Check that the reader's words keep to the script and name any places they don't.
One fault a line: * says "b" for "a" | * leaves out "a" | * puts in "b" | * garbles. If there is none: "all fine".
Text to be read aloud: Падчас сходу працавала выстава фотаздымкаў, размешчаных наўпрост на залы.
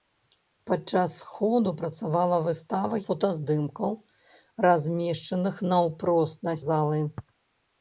all fine